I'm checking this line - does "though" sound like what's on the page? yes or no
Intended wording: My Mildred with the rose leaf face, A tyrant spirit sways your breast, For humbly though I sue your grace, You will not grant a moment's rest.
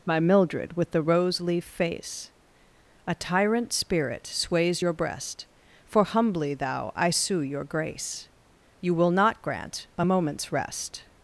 no